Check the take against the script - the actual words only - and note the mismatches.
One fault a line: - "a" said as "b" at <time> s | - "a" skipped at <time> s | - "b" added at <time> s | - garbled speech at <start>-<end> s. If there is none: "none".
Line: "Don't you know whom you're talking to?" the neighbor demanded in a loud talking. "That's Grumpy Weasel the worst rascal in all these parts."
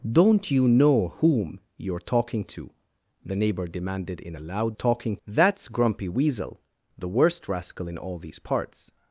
none